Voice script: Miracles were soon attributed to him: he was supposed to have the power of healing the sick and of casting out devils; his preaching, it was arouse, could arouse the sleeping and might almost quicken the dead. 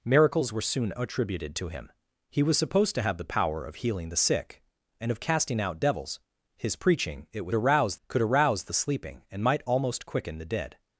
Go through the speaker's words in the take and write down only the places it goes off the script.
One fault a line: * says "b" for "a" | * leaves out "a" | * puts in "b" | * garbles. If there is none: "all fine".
all fine